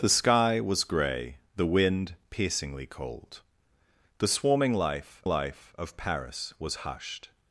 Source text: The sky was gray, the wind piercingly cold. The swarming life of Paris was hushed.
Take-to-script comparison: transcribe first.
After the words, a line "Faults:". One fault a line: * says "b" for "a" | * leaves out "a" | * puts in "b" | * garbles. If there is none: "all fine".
The sky was gray, the wind piercingly cold. The swarming life life of Paris was hushed.
Faults:
* puts in "life"